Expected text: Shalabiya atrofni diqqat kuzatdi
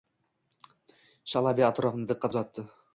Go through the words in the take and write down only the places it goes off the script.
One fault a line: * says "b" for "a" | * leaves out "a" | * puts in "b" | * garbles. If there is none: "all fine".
all fine